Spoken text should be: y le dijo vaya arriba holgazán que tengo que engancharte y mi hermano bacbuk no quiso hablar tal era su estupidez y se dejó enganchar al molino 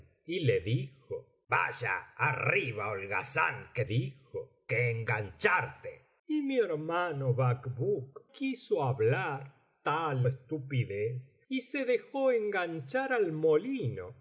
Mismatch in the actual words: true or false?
true